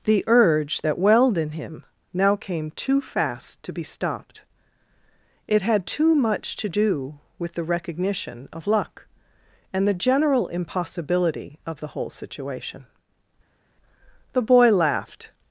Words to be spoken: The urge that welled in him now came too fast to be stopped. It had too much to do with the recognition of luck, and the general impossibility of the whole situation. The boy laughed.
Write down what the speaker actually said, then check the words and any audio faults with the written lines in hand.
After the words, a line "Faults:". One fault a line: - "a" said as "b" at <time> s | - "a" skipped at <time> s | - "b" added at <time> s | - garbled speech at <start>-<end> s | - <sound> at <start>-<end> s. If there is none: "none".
The urge that welled in him now came too fast to be stopped. It had too much to do with the recognition of luck, and the general impossibility of the whole situation. The boy laughed.
Faults:
none